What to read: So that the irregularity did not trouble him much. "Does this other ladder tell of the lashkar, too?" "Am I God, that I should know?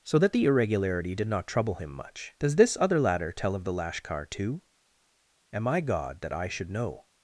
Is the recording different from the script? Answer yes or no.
no